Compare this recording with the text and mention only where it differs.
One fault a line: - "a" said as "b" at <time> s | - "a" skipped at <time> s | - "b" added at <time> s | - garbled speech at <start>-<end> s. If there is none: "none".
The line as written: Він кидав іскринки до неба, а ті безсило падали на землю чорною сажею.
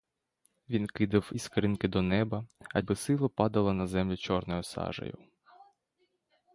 - "ті" skipped at 2.8 s